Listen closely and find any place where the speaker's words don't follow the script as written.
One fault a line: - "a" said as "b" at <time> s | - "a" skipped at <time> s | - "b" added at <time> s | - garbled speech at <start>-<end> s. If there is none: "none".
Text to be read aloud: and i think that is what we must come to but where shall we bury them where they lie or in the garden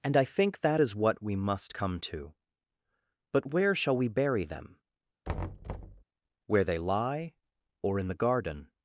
none